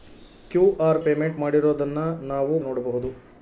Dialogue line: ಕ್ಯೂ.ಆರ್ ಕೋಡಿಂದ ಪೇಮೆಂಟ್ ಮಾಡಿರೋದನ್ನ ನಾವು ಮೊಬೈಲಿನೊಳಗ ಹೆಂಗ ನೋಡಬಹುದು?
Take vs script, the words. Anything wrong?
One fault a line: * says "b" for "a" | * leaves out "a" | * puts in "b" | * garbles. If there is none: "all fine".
* leaves out "ಕೋಡಿಂದ"
* leaves out "ಮೊಬೈಲಿನೊಳಗ ಹೆಂಗ"